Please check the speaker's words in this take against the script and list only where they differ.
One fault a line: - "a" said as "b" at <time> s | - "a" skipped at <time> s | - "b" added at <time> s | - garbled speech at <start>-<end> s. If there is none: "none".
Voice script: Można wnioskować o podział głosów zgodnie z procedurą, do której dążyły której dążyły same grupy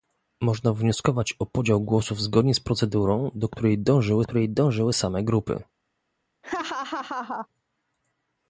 none